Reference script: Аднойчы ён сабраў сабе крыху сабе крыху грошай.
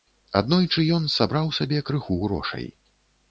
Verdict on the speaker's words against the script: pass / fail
fail